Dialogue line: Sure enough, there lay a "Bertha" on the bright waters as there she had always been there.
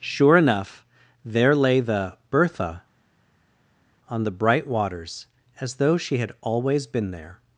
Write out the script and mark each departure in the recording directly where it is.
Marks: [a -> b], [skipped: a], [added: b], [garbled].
Sure enough, there lay [a -> the] "Bertha" on the bright waters as [there -> though] she had always been there.